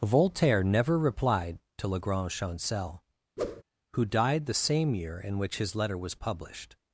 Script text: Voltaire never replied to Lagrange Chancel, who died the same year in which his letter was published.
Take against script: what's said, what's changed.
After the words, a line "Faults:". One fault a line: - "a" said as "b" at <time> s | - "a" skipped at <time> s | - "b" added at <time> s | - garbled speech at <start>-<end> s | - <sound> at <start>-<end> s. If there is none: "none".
Voltaire never replied to Lagrange Chancel, who died the same year in which his letter was published.
Faults:
- whoosh at 3.4-3.6 s